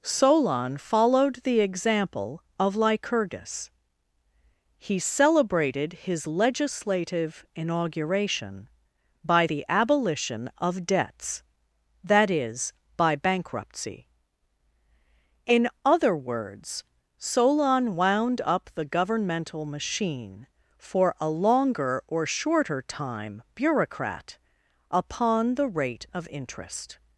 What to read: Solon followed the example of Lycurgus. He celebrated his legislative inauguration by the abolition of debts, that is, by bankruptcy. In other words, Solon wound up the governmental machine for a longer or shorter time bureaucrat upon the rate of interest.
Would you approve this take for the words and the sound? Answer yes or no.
yes